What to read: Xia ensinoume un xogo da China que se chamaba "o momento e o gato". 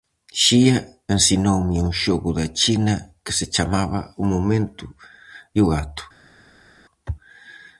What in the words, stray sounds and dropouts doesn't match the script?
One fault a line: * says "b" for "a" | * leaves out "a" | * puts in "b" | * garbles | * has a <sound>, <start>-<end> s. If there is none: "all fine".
all fine